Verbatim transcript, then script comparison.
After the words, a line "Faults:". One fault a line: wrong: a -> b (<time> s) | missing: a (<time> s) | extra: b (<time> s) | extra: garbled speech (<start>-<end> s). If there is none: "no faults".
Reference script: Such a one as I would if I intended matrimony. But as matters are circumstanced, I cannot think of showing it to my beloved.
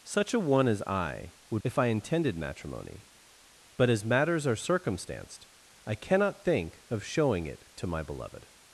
Such a one as I would if I intended matrimony. But as matters are circumstanced, I cannot think of showing it to my beloved.
Faults:
no faults